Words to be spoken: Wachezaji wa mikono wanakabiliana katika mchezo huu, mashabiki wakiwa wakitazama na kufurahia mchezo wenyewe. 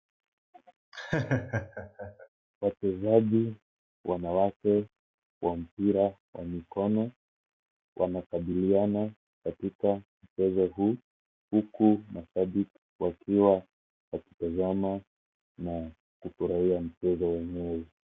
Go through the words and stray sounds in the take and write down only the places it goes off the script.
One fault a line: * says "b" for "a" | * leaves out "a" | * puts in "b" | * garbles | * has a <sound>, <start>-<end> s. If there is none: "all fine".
* has a laugh, 0.9-2.3 s
* puts in "wanawake"
* puts in "mpira wa"
* puts in "huku"